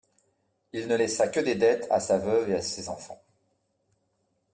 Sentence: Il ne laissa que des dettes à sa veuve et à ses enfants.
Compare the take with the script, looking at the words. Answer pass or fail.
pass